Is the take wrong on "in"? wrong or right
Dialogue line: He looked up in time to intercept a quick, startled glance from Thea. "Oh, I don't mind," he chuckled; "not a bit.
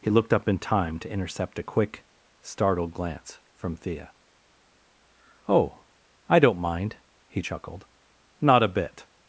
right